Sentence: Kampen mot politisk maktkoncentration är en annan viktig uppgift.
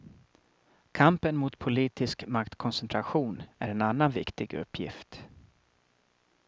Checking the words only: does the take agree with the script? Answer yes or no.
yes